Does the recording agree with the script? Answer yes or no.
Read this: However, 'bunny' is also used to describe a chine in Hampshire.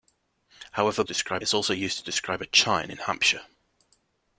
no